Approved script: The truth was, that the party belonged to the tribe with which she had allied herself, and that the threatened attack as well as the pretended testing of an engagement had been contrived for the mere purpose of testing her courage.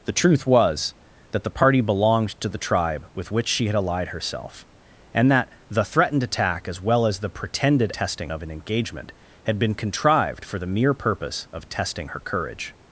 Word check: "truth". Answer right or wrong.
right